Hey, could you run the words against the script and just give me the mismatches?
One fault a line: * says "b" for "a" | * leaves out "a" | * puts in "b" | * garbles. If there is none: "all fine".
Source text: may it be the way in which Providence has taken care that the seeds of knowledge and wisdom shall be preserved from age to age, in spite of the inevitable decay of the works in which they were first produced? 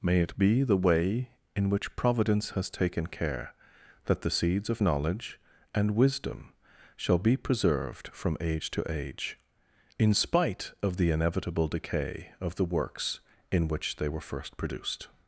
all fine